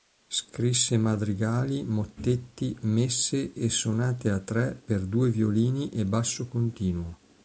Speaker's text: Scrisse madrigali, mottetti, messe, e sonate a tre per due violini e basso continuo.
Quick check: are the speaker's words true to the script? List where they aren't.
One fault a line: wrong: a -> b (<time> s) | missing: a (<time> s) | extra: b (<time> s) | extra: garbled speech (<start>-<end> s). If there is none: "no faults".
no faults